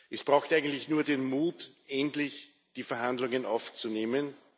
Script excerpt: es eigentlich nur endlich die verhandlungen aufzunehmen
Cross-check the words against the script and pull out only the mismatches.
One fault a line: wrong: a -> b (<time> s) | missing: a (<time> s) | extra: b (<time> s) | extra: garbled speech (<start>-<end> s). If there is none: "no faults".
extra: braucht (0.2 s)
extra: den mut (1.0 s)